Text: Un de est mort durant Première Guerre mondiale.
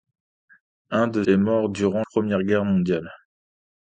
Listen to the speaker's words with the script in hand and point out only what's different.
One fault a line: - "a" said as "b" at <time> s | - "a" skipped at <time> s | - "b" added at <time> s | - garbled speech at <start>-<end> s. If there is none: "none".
none